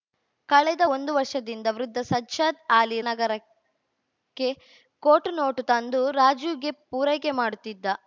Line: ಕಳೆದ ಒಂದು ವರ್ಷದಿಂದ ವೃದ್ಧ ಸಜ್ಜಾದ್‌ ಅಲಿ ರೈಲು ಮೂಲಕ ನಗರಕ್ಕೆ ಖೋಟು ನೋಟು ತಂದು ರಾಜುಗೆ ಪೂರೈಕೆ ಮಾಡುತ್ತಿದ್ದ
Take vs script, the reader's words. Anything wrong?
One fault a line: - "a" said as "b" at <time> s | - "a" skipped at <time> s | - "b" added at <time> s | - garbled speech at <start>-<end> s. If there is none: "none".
- "ರೈಲು ಮೂಲಕ" skipped at 3.0 s